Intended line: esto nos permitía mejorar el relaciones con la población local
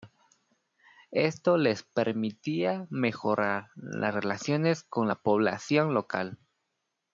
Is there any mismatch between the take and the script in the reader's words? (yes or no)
yes